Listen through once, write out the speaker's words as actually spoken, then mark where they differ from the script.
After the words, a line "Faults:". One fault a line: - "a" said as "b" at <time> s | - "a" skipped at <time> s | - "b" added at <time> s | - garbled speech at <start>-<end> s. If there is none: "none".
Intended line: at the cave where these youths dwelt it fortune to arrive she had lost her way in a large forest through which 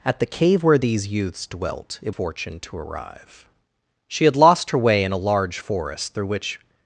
at the cave where these youths dwelt it fortune to arrive she had lost her way in a large forest through which
Faults:
none